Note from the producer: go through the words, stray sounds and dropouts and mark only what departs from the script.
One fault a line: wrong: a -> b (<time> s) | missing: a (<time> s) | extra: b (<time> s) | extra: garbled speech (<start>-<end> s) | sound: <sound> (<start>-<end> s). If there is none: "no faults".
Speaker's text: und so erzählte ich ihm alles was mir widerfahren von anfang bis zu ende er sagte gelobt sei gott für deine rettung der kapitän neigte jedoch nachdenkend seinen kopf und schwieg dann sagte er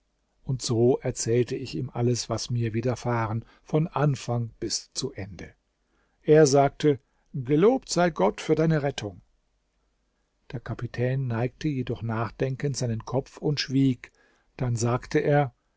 no faults